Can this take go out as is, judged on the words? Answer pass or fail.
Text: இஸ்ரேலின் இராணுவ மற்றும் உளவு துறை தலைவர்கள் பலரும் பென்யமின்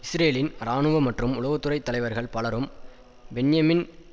pass